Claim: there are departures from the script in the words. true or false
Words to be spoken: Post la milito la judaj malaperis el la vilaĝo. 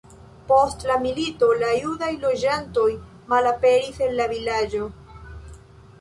true